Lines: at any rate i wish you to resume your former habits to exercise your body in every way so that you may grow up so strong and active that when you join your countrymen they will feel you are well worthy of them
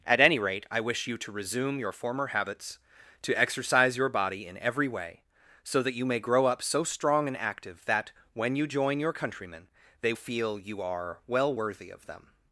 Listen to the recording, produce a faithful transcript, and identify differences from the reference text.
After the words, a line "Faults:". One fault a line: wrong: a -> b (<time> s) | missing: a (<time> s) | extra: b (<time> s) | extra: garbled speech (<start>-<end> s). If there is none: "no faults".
at any rate i wish you to resume your former habits to exercise your body in every way so that you may grow up so strong and active that when you join your countrymen they feel you are well worthy of them
Faults:
missing: will (10.1 s)